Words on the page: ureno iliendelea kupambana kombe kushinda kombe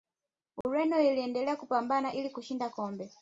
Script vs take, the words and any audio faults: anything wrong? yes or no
yes